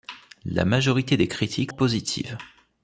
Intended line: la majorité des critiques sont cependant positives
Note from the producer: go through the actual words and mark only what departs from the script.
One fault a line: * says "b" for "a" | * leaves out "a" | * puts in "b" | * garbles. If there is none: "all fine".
* leaves out "sont cependant"